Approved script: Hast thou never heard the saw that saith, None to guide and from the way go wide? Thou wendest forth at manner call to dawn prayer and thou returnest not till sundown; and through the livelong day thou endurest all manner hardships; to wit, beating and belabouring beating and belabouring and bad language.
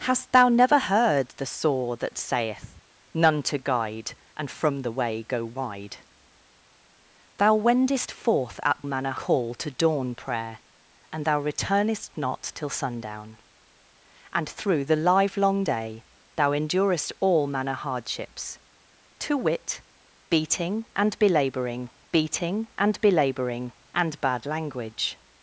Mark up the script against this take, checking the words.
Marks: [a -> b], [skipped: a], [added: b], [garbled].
Hast thou never heard the saw that saith, None to guide and from the way go wide? Thou wendest forth at manner call to dawn prayer and thou returnest not till sundown; and through the livelong day thou endurest all manner hardships; to wit, beating and belabouring beating and belabouring and bad language.